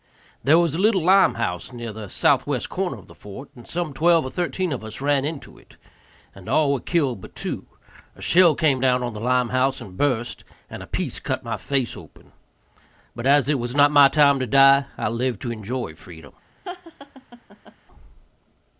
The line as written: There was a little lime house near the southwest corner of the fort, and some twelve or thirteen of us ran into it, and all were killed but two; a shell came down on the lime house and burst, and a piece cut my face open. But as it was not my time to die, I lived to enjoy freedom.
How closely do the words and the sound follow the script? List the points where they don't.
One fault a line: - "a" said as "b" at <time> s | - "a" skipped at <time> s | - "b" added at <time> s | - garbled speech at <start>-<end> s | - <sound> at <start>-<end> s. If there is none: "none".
- laugh at 16.6-17.8 s